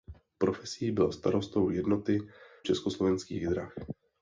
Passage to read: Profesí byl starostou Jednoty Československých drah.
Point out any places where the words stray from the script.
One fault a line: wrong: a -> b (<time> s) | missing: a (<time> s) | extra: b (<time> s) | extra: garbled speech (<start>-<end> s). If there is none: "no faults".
no faults